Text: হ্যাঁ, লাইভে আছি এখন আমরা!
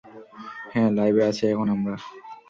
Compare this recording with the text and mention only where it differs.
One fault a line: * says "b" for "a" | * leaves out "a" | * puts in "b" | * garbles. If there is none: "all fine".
all fine